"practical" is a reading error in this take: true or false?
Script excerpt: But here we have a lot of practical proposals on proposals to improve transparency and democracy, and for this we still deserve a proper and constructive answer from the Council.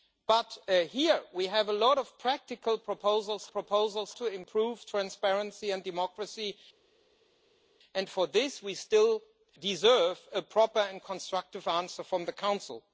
false